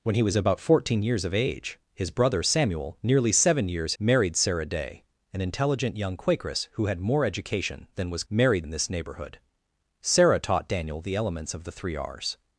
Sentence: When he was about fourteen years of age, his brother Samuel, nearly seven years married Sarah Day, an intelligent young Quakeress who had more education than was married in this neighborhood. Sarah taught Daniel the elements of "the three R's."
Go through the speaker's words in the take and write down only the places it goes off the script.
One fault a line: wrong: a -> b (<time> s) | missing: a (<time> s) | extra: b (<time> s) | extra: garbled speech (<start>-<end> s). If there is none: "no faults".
no faults